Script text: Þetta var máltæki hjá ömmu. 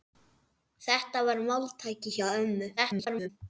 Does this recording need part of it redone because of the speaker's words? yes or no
yes